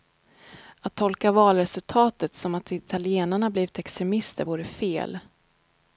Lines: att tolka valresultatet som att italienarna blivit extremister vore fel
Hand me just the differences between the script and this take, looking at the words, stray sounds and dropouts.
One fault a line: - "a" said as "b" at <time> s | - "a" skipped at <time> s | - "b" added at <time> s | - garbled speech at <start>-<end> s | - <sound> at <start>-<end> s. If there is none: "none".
none